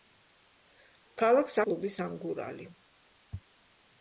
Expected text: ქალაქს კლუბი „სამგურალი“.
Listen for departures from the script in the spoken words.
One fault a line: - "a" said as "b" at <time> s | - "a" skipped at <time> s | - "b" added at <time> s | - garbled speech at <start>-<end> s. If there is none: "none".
none